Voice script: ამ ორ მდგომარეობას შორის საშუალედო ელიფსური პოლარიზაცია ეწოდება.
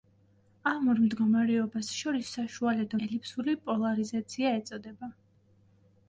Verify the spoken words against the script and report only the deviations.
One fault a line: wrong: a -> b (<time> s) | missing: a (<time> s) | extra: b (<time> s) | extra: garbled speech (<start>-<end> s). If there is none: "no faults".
no faults